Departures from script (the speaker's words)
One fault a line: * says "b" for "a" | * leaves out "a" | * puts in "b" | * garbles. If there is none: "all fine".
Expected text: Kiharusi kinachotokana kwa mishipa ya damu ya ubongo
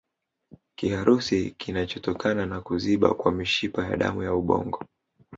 * puts in "na kuziba"